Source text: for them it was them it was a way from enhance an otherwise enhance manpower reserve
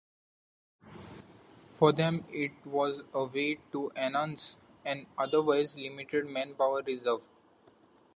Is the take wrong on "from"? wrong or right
wrong